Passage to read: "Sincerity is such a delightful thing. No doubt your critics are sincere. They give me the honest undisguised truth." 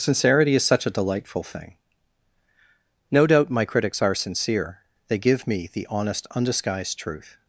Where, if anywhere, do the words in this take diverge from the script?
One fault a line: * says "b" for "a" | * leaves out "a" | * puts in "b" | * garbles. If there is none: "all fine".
* says "my" for "your"